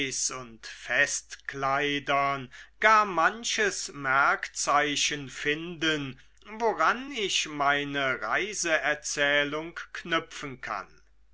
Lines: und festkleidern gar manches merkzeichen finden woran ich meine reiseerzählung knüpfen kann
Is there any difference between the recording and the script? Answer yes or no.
no